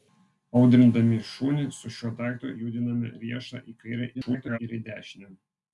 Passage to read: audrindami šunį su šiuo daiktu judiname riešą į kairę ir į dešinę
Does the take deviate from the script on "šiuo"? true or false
false